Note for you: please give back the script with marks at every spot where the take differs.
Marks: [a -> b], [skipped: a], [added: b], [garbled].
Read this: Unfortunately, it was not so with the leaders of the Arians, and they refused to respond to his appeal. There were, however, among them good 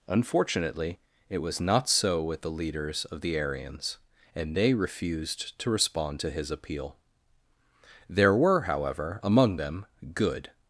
Unfortunately, it was not so with the leaders of the Arians, and they refused to respond to his appeal. There were, however, among them good